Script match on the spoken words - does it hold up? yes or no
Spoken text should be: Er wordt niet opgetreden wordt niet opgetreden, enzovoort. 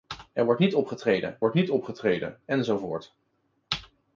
yes